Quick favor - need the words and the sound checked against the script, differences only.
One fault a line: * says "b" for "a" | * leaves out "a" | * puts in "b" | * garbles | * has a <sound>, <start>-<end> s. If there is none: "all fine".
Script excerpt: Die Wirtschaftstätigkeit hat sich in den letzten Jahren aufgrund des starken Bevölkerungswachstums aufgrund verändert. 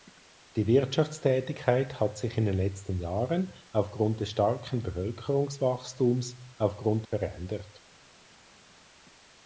all fine